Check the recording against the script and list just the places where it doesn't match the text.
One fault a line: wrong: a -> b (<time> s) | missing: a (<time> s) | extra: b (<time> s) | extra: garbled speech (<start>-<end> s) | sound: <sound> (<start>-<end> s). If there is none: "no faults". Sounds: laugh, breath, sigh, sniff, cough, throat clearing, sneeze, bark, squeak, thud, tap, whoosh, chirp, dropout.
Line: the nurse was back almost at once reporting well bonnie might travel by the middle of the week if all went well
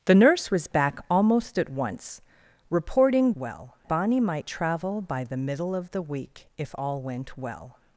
no faults